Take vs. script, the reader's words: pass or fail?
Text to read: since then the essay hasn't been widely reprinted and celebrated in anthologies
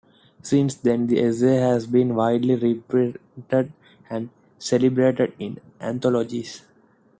fail